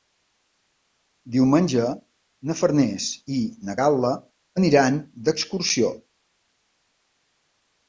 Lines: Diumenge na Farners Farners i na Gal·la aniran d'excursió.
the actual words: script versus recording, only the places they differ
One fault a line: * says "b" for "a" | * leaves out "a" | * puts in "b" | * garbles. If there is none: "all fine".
* leaves out "Farners"